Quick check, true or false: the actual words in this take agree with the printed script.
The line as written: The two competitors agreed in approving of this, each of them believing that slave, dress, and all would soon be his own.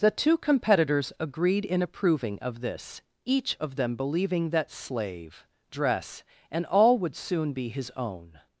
true